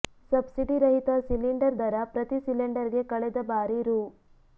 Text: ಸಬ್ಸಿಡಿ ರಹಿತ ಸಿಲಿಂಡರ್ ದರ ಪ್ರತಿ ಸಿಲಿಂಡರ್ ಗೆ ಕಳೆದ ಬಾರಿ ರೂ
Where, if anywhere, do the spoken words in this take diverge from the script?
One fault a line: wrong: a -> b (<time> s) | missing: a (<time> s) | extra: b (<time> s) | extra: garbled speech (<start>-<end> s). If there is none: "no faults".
no faults